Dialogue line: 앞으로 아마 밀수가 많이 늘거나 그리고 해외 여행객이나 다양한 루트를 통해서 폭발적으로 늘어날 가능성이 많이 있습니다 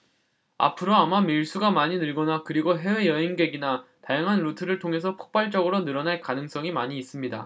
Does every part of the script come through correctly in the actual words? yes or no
yes